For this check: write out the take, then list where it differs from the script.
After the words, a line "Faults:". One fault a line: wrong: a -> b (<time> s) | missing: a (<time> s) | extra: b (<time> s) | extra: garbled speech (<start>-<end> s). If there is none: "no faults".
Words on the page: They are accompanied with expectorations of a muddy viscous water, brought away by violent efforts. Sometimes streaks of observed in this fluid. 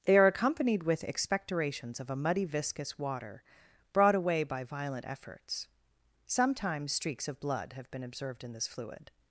They are accompanied with expectorations of a muddy viscous water, brought away by violent efforts. Sometimes streaks of blood have been observed in this fluid.
Faults:
extra: blood have been (7.4 s)